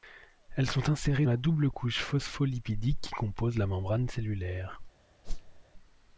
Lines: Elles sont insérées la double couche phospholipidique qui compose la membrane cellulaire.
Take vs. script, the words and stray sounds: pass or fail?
fail